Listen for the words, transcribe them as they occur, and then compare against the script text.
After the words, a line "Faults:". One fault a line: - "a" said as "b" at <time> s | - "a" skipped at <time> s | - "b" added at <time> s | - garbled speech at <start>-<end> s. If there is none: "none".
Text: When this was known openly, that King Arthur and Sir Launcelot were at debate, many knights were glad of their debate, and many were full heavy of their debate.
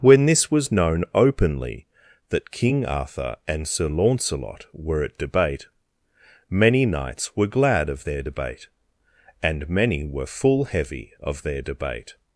When this was known openly, that King Arthur and Sir Launcelot were at debate, many knights were glad of their debate, and many were full heavy of their debate.
Faults:
none